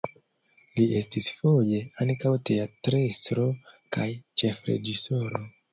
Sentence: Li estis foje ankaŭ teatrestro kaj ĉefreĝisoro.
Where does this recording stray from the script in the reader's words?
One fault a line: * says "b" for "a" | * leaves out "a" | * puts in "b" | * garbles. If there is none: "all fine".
all fine